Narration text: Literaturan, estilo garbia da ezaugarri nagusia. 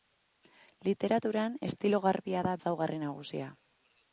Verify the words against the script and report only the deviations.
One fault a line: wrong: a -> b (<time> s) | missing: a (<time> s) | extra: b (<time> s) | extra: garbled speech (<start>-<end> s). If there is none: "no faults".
no faults